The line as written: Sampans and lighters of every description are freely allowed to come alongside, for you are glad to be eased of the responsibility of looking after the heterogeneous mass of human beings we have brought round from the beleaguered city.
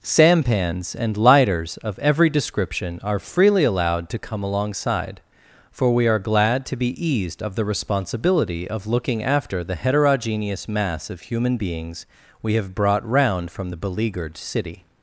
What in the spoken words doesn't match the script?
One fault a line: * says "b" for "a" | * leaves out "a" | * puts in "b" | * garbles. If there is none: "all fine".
* says "we" for "you"